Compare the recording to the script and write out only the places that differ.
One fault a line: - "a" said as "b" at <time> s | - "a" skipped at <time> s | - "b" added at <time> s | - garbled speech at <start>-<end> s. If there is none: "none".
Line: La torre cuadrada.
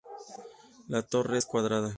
- "es" added at 1.3 s